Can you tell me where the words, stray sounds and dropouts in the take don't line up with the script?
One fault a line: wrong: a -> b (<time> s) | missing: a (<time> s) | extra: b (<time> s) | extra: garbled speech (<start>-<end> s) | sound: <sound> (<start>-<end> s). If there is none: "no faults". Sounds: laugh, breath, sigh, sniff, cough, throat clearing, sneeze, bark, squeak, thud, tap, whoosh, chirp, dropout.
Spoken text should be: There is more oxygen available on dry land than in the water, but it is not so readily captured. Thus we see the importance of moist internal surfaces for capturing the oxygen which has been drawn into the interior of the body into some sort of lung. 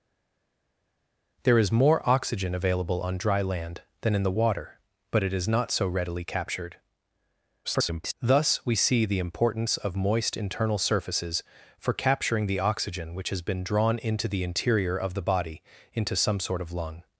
extra: garbled speech (7.6-8.1 s)